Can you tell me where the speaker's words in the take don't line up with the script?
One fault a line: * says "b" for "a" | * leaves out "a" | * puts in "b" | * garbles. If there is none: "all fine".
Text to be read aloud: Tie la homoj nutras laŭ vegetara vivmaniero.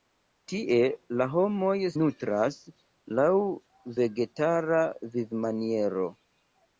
all fine